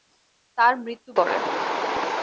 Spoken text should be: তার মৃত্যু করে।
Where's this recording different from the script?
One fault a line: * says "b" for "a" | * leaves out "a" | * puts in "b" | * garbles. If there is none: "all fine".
all fine